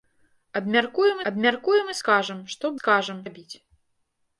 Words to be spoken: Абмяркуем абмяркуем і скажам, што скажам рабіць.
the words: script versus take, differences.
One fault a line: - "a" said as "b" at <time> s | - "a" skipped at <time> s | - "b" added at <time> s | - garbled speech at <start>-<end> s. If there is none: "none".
none